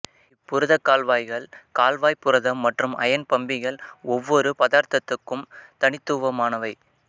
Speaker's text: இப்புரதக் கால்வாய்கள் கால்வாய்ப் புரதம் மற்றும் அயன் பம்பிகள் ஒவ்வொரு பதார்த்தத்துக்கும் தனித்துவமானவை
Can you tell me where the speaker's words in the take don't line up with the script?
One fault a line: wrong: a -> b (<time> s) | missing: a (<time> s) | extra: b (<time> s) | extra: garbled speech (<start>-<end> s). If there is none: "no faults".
no faults